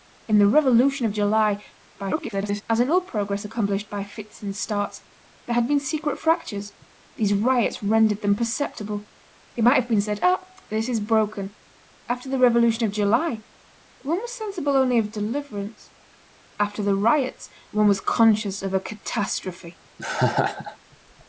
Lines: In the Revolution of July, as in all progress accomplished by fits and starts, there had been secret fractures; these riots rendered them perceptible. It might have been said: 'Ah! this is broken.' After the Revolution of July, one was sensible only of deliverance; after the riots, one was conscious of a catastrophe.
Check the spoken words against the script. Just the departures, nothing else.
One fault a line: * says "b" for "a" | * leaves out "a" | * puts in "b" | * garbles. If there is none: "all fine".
* garbles